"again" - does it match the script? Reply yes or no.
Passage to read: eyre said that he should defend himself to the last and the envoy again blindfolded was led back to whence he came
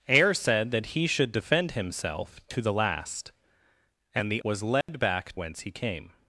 no